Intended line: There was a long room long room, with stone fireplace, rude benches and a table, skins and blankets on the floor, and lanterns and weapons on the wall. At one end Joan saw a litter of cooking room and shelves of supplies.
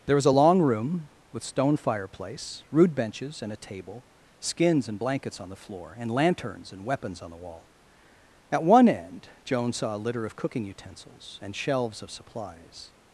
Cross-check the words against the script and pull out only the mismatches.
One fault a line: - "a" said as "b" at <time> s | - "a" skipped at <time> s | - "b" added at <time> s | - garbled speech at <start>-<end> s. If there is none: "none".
- "long room" skipped at 1.1 s
- "room" said as "utensils" at 10.6 s